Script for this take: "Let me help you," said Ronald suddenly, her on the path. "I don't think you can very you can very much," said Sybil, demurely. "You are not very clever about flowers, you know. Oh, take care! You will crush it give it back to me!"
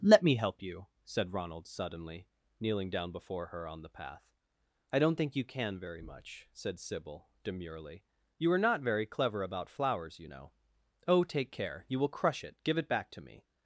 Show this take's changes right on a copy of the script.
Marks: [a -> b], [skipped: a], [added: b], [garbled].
"Let me help you," said Ronald suddenly, [added: kneeling down before] her on the path. "I don't think you can very [skipped: you can very] much," said Sybil, demurely. "You are not very clever about flowers, you know. Oh, take care! You will crush it give it back to me!"